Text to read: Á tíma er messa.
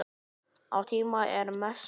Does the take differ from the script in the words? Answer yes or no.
no